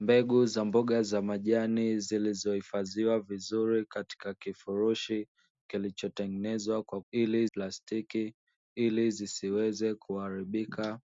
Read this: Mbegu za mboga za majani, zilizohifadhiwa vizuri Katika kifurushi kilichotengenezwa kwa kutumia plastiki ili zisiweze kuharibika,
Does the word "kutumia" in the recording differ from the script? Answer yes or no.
yes